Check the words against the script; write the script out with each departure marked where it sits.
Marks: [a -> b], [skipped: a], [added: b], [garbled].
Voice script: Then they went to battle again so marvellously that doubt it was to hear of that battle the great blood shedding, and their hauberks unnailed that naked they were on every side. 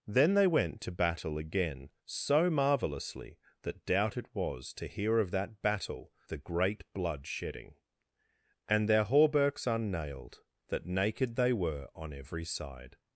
Then they went to battle again so marvellously that doubt it was to hear of that battle the great blood shedding, and their hauberks unnailed that naked they were on every side.